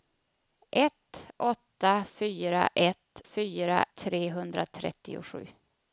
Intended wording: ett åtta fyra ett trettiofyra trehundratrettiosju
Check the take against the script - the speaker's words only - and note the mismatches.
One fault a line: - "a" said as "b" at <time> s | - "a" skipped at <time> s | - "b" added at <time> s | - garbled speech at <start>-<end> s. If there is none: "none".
- "trettiofyra" said as "fyra" at 3.2 s